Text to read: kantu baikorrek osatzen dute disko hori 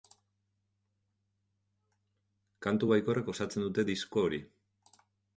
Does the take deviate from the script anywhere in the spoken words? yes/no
no